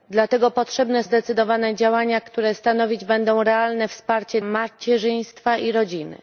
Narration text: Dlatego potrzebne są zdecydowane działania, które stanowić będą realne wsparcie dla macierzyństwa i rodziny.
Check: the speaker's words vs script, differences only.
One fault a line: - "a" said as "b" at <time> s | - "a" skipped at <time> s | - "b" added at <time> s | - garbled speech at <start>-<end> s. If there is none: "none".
- "są" skipped at 1.0 s
- "dla" skipped at 4.4 s